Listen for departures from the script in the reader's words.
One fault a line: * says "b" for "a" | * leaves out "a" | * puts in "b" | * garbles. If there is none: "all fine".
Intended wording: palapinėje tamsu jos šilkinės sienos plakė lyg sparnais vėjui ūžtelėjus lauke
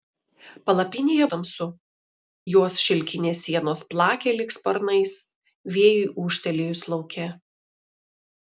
all fine